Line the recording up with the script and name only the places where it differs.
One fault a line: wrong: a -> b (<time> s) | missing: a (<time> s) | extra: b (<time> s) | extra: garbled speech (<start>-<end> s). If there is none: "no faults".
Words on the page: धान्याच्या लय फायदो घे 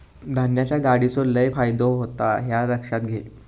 extra: गाडीचो (0.8 s)
extra: होता ह्या लक्षात (1.9 s)